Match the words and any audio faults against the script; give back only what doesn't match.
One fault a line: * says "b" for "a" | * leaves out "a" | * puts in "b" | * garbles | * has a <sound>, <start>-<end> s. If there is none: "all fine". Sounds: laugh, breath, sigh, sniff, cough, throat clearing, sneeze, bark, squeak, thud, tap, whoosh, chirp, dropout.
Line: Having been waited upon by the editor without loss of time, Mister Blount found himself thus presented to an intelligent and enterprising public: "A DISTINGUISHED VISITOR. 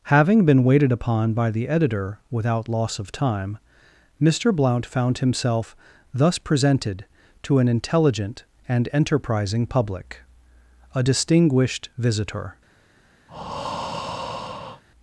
* has a breath, 13.3-14.8 s